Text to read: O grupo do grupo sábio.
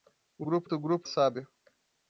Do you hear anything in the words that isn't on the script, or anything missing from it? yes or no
no